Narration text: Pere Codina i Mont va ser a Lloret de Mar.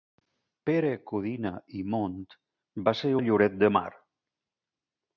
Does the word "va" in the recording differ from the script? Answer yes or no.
no